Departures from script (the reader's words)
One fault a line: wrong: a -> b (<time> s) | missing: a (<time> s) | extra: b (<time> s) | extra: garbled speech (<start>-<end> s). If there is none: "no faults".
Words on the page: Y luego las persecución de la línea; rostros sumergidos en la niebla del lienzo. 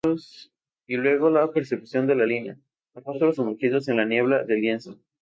wrong: las -> la (1.3 s)